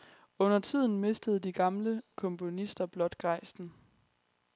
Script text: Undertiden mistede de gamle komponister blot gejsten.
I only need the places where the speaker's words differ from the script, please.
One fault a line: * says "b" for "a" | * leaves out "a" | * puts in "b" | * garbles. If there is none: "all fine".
all fine